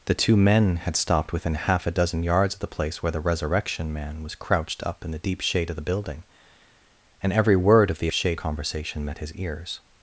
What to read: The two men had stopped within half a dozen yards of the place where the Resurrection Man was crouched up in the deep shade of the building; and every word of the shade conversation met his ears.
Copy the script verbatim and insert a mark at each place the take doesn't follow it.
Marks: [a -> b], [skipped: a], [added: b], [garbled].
The two men had stopped within half a dozen yards of the place where the Resurrection Man was crouched up in the deep shade of the building; and every word of the shade conversation met his ears.